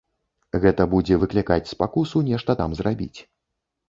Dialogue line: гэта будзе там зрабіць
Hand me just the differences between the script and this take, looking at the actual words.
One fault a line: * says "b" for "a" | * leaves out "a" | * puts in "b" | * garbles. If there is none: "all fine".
* puts in "выклікаць спакусу нешта"